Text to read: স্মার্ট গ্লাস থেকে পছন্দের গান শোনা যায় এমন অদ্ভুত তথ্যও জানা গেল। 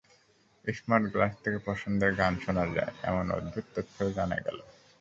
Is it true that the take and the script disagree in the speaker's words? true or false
false